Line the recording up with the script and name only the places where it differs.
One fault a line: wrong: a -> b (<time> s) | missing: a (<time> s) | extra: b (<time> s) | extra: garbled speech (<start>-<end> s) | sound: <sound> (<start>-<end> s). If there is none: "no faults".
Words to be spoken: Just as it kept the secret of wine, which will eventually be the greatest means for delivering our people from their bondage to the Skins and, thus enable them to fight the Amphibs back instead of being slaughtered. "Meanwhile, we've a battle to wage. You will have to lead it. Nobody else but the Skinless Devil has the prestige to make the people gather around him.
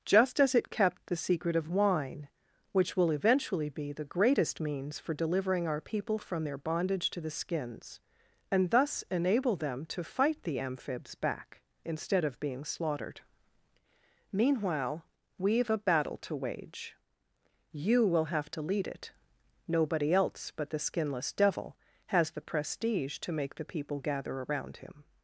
no faults